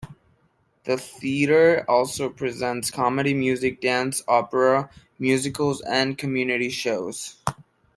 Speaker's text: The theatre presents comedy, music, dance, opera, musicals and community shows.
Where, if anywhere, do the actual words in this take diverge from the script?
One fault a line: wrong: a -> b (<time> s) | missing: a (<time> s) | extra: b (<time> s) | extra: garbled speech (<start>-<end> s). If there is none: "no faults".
extra: also (1.9 s)